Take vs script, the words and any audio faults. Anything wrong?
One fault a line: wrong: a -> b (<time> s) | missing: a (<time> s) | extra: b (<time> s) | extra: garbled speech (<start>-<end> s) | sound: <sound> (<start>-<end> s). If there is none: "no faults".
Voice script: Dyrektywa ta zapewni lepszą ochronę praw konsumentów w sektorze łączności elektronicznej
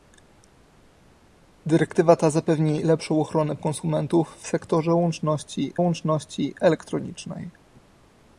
missing: praw (3.6 s)
extra: łączności (5.8 s)